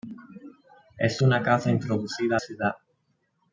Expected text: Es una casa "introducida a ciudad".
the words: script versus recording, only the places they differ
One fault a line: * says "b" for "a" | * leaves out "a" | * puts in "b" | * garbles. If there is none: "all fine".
all fine